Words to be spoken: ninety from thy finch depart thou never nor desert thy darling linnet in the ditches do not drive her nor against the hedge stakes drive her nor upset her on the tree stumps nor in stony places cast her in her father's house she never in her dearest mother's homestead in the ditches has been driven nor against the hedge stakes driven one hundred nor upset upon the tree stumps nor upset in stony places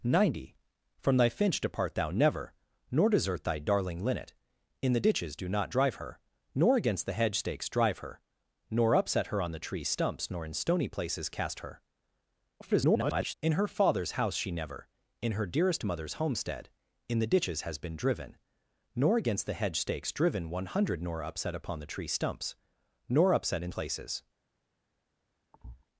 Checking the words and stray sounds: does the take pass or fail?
fail